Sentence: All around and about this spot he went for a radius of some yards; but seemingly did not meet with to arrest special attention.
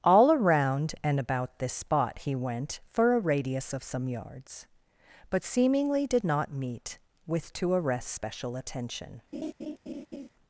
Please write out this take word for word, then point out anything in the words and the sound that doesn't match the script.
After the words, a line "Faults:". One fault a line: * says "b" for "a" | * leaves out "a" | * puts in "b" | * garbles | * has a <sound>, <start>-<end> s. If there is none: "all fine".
All around and about this spot he went for a radius of some yards; but seemingly did not meet with to arrest special attention.
Faults:
* has a laugh, 9.3-10.3 s